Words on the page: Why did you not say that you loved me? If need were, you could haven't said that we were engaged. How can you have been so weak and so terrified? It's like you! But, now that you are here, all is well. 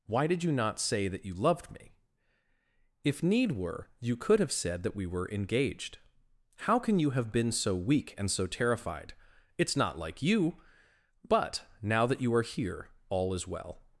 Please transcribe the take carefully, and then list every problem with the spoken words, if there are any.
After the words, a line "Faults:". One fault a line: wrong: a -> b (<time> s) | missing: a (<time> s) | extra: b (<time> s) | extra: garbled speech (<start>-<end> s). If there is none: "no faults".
Why did you not say that you loved me? If need were, you could have said that we were engaged. How can you have been so weak and so terrified? It's not like you! But, now that you are here, all is well.
Faults:
wrong: haven't -> have (4.4 s)
extra: not (9.8 s)